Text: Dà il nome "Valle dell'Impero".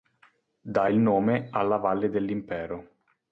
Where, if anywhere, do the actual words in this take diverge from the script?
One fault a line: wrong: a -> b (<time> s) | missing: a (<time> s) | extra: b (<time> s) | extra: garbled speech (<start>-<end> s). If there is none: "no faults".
extra: alla (1.5 s)